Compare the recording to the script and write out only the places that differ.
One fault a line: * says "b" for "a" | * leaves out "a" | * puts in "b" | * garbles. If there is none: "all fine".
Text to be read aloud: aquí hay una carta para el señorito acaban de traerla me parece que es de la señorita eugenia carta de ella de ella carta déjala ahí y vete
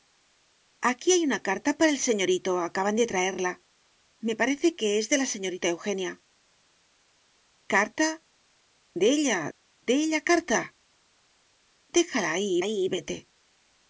* puts in "ahí"